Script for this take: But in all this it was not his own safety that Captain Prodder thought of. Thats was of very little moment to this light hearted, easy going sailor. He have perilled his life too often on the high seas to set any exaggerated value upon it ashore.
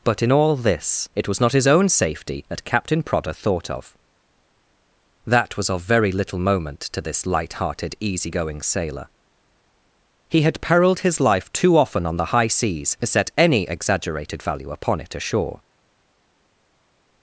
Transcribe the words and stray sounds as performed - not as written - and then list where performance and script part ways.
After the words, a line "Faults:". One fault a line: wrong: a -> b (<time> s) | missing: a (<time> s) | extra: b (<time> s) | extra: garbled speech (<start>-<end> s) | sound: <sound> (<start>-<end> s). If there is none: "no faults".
But in all this it was not his own safety that Captain Prodder thought of. That was of very little moment to this light hearted, easy going sailor. He had perilled his life too often on the high seas to set any exaggerated value upon it ashore.
Faults:
wrong: Thats -> That (5.2 s)
wrong: have -> had (10.4 s)